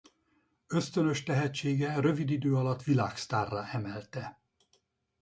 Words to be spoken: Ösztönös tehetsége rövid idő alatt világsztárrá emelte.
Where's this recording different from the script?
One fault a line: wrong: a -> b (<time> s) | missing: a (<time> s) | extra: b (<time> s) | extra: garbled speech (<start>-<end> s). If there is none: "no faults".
no faults